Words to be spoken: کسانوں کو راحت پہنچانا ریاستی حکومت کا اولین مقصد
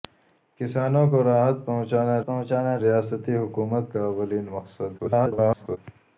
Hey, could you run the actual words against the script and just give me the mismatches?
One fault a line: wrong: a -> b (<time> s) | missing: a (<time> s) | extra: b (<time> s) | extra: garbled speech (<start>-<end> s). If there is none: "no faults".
extra: پہنچانا (2.3 s)
extra: garbled speech (5.0-5.8 s)